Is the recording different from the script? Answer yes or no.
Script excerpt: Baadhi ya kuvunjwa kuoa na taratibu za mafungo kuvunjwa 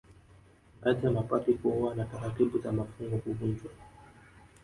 yes